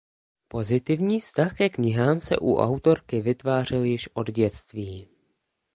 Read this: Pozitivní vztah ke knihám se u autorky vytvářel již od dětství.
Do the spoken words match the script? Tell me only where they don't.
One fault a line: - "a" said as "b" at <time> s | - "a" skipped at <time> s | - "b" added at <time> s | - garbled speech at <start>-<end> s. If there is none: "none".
none